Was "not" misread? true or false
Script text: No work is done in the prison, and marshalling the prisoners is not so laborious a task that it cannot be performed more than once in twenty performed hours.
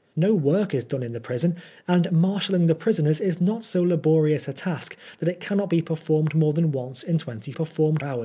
false